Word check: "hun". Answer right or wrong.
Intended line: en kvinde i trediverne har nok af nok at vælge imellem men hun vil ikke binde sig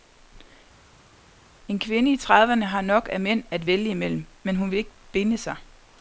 right